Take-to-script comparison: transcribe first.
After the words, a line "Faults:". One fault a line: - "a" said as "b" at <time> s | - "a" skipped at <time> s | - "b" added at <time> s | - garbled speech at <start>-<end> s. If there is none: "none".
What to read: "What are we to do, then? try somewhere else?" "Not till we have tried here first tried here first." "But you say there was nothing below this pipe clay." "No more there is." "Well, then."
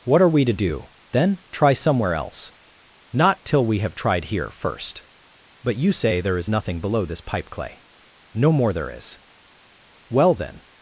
"What are we to do, then? try somewhere else?" "Not till we have tried here first." "But you say there is nothing below this pipe clay." "No more there is." "Well, then."
Faults:
- "tried here first" skipped at 5.0 s
- "was" said as "is" at 6.4 s